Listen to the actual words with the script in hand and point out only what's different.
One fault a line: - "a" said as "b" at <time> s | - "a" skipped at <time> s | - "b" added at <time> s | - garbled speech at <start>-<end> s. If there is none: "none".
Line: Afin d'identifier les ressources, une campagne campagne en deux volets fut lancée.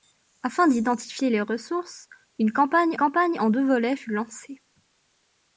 none